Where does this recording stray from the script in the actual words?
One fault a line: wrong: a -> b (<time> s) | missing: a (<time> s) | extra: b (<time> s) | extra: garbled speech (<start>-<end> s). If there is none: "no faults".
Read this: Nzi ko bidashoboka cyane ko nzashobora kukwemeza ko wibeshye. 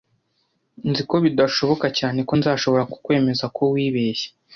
no faults